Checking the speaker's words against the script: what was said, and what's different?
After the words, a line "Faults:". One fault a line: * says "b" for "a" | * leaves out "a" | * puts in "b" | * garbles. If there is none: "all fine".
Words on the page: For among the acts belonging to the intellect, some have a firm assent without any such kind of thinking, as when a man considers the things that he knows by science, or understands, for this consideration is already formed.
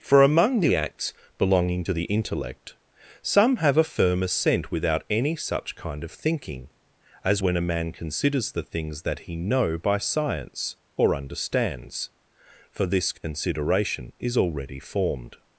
For among the acts belonging to the intellect, some have a firm assent without any such kind of thinking, as when a man considers the things that he know by science, or understands, for this consideration is already formed.
Faults:
* says "know" for "knows"